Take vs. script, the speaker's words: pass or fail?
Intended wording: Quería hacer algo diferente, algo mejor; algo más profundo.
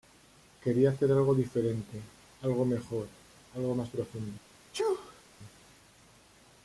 pass